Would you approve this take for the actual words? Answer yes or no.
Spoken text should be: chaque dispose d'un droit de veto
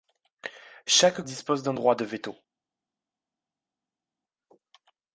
yes